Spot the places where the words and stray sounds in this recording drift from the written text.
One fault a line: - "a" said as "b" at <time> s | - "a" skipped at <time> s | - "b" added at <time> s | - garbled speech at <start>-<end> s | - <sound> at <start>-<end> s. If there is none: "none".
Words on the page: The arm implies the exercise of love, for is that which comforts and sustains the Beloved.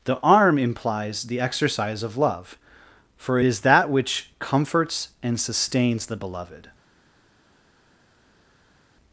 none